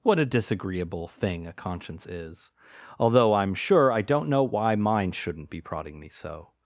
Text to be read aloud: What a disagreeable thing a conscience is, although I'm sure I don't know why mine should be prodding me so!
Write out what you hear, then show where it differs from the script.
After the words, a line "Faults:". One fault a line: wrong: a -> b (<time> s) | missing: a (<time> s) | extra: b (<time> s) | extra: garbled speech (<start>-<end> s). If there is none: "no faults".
What a disagreeable thing a conscience is, although I'm sure I don't know why mine shouldn't be prodding me so!
Faults:
wrong: should -> shouldn't (5.1 s)